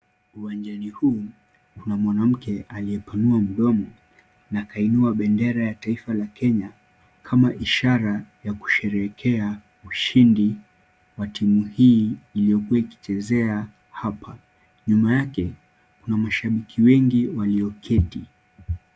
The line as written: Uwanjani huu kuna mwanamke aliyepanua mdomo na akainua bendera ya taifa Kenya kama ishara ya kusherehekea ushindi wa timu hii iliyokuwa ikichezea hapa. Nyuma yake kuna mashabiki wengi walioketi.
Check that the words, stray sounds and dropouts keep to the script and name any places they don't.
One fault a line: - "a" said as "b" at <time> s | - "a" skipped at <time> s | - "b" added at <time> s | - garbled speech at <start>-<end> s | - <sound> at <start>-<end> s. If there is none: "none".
- "la" added at 6.1 s